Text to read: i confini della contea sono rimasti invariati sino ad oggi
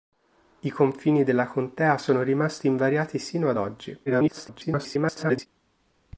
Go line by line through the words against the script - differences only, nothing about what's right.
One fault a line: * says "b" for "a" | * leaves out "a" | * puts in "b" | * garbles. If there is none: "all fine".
* garbles